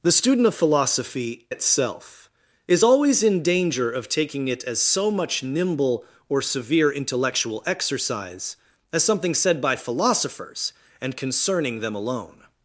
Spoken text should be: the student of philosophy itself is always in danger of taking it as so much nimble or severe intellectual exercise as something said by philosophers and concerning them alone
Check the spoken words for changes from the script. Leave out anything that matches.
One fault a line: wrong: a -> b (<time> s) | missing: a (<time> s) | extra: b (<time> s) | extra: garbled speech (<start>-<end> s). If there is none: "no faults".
no faults